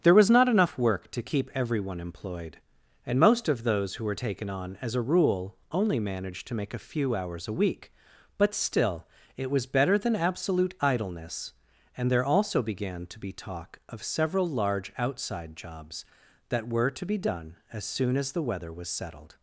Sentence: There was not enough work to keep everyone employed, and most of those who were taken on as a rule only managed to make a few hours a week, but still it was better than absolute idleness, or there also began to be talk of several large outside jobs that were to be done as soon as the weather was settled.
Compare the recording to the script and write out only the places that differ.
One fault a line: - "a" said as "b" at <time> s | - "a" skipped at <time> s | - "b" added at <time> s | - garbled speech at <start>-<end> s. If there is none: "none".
- "or" said as "and" at 12.0 s